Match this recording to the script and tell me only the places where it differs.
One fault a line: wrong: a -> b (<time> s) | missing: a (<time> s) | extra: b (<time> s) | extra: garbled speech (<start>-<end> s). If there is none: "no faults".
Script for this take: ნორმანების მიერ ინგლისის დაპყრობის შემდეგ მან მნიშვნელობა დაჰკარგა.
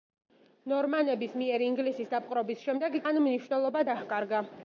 no faults